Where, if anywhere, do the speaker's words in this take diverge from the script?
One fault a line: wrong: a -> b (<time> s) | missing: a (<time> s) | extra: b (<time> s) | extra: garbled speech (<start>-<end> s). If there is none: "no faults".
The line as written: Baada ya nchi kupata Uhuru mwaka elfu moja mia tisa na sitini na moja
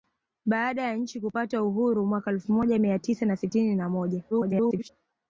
extra: garbled speech (4.3-4.9 s)